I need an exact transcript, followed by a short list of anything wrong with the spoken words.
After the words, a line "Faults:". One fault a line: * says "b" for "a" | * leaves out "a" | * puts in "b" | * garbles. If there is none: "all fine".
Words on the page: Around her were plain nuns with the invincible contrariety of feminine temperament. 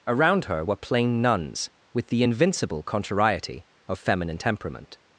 Around her were plain nuns with the invincible contrariety of feminine temperament.
Faults:
all fine